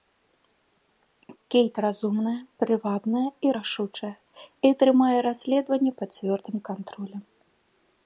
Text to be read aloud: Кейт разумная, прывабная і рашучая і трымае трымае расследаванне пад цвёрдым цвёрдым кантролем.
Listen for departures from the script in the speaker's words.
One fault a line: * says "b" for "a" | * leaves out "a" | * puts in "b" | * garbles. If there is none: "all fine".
* leaves out "трымае"
* leaves out "цвёрдым"